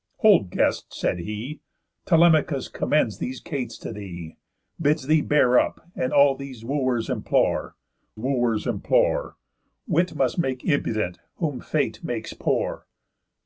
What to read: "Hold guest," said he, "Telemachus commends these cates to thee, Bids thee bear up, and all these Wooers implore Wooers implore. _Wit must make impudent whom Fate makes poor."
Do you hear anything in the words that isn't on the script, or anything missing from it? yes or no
no